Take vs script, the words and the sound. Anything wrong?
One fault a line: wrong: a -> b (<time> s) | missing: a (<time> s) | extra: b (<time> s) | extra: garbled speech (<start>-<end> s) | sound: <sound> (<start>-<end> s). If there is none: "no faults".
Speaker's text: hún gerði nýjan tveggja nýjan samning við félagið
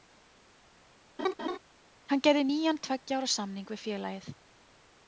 sound: laugh (1.2-1.6 s)
wrong: hún -> hann (2.1 s)
wrong: nýjan -> ára (3.2 s)